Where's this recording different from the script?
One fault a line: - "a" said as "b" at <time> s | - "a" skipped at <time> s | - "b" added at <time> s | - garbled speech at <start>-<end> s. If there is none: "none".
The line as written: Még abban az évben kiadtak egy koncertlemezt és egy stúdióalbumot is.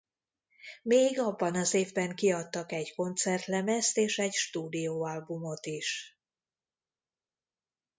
none